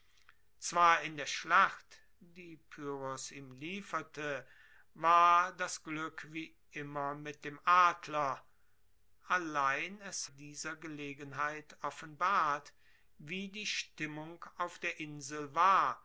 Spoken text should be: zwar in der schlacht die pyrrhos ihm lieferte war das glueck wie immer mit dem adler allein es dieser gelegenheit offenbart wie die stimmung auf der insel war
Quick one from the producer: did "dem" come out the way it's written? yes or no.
yes